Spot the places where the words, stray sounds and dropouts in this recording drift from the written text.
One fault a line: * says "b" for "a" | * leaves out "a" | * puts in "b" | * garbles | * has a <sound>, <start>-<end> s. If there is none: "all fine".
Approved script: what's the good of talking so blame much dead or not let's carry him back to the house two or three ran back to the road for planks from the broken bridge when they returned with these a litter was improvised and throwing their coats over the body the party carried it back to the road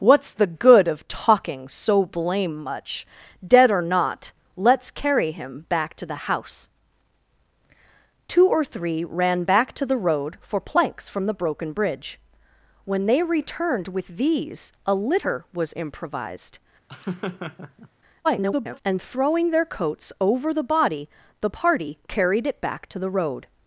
* has a laugh, 16.9-17.9 s
* garbles